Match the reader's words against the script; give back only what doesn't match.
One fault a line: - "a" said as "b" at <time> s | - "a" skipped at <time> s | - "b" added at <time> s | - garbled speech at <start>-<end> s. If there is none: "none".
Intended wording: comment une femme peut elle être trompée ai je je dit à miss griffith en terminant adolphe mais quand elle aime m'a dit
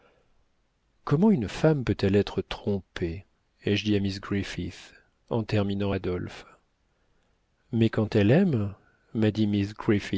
- "je" skipped at 3.9 s